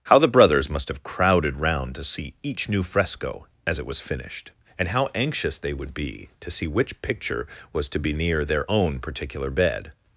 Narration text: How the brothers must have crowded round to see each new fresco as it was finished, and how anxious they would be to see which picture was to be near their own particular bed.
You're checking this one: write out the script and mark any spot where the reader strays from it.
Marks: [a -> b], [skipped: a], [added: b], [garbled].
How the brothers must have crowded round to see each new fresco as it was finished, and how anxious they would be to see which picture was to be near their own particular bed.